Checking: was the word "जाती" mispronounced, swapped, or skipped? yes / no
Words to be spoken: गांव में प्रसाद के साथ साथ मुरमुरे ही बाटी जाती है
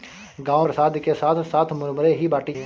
yes